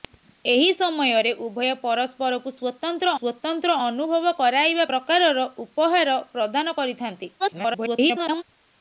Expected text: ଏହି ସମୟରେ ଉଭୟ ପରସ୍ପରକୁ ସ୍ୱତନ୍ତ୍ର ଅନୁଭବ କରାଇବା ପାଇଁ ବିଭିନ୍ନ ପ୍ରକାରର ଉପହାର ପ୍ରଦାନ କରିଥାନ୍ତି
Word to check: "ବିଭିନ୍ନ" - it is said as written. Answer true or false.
false